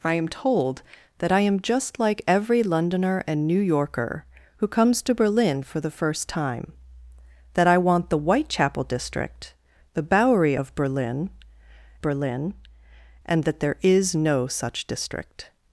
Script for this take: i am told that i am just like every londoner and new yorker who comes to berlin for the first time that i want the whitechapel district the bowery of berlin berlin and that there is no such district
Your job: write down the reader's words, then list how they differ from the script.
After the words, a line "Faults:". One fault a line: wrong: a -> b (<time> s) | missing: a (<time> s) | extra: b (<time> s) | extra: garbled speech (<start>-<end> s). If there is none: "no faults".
i am told that i am just like every londoner and new yorker who comes to berlin for the first time that i want the whitechapel district the bowery of berlin berlin and that there is no such district
Faults:
no faults